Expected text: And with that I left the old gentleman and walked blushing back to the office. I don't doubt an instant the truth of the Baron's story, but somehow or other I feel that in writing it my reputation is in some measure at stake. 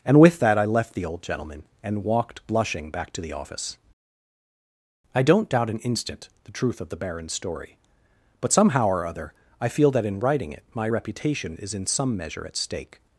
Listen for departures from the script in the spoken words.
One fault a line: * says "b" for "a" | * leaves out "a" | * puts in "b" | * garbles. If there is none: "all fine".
all fine